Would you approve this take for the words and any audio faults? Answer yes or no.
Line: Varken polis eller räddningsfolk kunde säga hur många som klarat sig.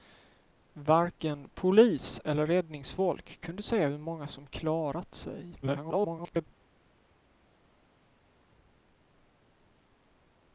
no